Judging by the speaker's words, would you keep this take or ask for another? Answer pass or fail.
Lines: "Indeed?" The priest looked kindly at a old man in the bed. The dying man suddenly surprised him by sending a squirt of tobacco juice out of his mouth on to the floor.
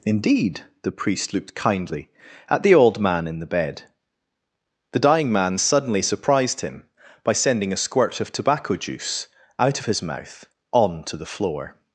fail